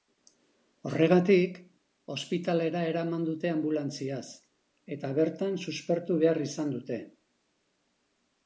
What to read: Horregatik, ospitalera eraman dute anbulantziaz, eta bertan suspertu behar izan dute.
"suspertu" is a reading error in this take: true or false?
false